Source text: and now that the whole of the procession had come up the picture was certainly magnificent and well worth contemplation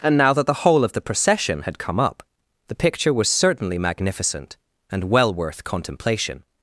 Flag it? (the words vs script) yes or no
no